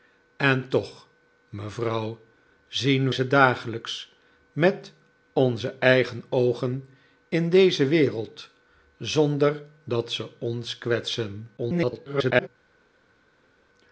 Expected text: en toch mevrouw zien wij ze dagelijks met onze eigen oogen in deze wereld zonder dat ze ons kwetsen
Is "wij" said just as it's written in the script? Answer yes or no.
no